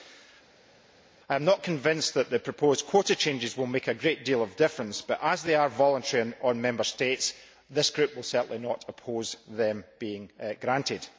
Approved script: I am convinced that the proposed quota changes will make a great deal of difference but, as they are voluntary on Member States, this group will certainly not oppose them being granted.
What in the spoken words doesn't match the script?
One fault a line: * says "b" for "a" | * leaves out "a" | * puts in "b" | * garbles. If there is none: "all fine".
* puts in "not"